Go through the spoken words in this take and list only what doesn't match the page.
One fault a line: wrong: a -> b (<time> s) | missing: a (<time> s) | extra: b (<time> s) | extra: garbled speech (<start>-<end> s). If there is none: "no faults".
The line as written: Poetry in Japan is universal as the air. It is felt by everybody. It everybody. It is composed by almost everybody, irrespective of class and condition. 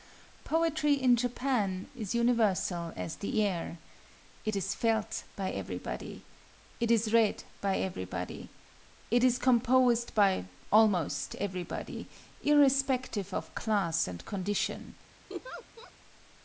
extra: is read by (6.9 s)